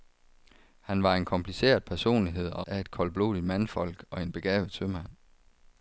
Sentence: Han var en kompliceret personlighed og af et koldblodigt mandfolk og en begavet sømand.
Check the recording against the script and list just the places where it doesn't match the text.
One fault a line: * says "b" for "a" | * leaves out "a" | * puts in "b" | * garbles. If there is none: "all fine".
all fine